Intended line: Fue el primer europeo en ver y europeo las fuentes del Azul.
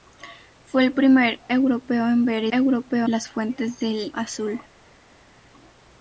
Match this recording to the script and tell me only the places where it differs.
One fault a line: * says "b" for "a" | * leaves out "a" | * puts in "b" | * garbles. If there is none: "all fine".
all fine